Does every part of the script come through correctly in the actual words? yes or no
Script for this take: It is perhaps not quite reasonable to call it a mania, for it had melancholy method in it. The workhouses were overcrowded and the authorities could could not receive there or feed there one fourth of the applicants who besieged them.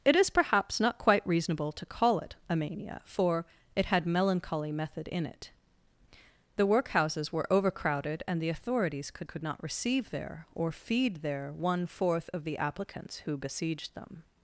yes